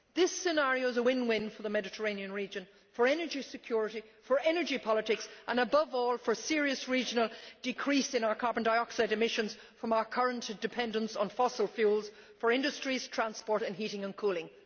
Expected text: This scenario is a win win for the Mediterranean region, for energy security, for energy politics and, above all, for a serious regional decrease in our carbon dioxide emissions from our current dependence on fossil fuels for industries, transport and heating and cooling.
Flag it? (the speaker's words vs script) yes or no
no